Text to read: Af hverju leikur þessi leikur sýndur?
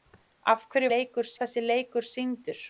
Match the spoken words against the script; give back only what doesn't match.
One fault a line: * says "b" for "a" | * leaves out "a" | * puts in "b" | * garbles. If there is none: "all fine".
all fine